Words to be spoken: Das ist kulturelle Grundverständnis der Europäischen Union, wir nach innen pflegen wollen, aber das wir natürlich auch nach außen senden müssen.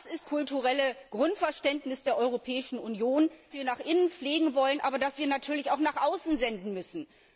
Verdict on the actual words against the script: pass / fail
pass